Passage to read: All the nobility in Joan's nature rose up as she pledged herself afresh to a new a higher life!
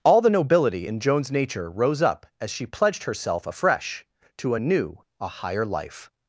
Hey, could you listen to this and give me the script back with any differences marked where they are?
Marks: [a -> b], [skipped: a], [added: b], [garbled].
All the nobility in Joan's nature rose up as she pledged herself afresh to a new a higher life!